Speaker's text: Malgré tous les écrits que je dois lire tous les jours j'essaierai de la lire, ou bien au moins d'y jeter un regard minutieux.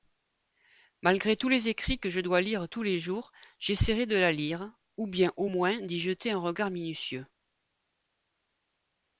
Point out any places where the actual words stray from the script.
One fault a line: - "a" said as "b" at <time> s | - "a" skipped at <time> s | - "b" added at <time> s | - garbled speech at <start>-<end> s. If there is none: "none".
none